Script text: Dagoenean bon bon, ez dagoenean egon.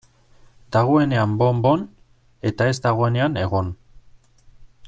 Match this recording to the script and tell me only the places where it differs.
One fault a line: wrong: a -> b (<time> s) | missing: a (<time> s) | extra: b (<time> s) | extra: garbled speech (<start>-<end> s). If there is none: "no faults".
extra: eta (2.5 s)